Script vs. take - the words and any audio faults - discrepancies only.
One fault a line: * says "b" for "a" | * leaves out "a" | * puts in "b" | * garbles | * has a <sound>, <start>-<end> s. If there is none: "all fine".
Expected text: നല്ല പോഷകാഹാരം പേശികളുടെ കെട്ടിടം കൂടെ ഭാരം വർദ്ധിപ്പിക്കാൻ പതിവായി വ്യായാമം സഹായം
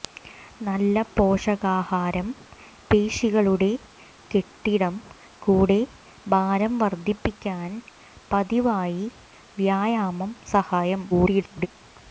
* garbles